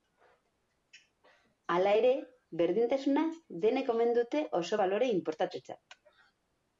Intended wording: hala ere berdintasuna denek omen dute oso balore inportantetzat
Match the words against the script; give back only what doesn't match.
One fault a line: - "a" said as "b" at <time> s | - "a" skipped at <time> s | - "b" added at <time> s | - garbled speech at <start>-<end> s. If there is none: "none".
none